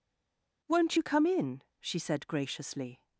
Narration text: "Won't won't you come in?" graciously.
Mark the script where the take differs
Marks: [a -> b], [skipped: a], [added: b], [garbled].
"Won't [skipped: won't] you come in?" [added: she said] graciously.